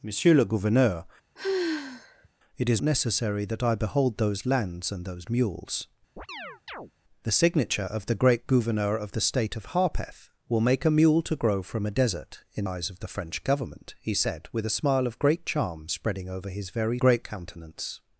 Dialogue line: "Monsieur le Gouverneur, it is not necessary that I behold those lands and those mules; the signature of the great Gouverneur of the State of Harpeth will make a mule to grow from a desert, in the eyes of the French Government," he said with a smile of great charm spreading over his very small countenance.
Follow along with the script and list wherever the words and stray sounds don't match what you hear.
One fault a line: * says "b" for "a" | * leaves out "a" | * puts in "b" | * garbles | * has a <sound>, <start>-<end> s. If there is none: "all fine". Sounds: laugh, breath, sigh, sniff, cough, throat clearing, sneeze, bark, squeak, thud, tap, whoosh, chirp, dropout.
* has a sigh, 1.4-2.3 s
* leaves out "not"
* has a chirp, 6.2-6.9 s
* leaves out "the"
* says "great" for "small"